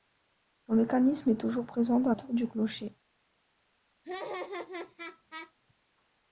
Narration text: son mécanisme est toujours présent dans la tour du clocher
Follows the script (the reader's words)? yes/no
no